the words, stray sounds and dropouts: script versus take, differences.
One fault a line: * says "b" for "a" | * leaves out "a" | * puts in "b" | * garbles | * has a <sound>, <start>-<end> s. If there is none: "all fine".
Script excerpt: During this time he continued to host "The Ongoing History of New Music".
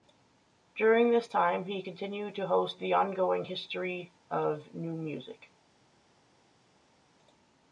all fine